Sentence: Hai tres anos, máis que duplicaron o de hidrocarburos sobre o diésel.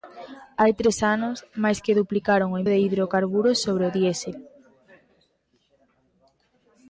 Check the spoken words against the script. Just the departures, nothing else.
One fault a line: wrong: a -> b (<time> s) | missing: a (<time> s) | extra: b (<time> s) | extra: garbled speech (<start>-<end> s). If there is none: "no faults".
no faults